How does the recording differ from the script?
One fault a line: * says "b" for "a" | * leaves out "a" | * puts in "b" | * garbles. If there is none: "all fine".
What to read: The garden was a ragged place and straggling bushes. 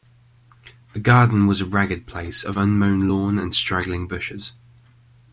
* puts in "of unmown lawn"